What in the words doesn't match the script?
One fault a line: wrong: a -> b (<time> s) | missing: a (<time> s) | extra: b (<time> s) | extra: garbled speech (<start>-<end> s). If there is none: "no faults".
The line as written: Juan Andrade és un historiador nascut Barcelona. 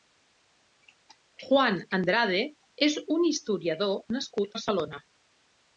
no faults